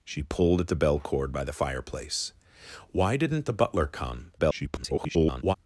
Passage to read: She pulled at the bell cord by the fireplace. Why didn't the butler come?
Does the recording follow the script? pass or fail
fail